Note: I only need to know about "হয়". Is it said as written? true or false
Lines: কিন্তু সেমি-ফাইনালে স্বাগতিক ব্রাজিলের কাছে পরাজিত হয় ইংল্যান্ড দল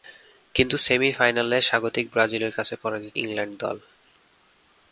false